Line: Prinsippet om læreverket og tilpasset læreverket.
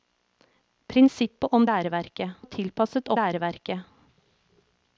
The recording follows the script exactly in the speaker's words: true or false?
true